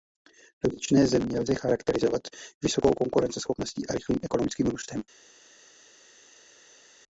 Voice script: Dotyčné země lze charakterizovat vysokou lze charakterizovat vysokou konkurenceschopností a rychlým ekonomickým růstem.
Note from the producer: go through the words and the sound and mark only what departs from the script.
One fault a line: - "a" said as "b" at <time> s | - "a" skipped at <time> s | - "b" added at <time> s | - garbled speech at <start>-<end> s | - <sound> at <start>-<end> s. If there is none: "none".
- "lze charakterizovat vysokou" skipped at 2.9 s